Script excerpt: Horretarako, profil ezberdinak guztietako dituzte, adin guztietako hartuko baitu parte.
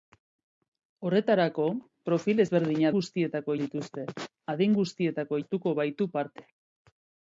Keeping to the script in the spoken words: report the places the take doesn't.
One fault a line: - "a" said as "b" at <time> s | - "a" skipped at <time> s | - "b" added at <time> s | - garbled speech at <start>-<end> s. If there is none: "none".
none